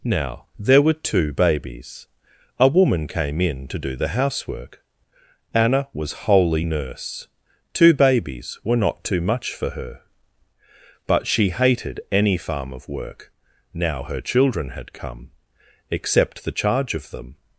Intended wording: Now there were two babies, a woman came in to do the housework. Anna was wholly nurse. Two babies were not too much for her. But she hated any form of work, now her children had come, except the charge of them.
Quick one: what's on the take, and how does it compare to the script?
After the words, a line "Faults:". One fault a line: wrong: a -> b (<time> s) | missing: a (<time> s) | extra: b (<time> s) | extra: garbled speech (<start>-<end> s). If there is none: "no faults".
Now there were two babies, a woman came in to do the housework. Anna was wholly nurse. Two babies were not too much for her. But she hated any farm of work, now her children had come, except the charge of them.
Faults:
wrong: form -> farm (12.4 s)